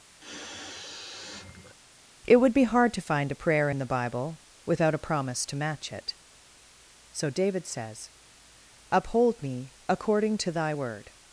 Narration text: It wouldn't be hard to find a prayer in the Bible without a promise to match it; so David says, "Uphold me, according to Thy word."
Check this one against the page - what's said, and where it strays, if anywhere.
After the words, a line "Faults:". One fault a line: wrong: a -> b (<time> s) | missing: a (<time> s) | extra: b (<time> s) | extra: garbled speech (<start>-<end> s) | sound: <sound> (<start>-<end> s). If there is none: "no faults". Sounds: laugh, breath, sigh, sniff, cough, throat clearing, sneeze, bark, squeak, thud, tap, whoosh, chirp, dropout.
It would be hard to find a prayer in the Bible without a promise to match it; so David says, "Uphold me, according to Thy word."
Faults:
sound: sniff (0.2-1.7 s)
wrong: wouldn't -> would (2.4 s)